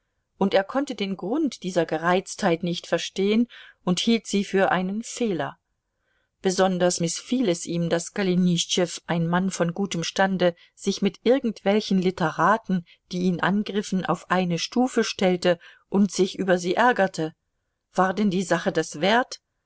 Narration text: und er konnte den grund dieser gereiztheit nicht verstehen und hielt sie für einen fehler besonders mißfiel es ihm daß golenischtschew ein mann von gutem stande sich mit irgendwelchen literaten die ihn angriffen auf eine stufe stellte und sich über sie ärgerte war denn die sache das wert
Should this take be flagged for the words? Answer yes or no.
no